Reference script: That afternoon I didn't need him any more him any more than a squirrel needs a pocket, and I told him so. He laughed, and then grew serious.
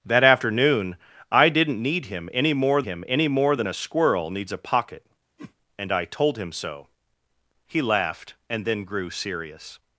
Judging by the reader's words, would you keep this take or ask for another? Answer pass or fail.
pass